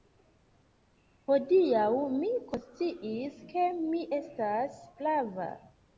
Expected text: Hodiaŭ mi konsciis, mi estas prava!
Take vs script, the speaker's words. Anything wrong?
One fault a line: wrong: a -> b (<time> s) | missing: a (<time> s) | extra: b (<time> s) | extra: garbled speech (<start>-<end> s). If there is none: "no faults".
extra: ke (3.5 s)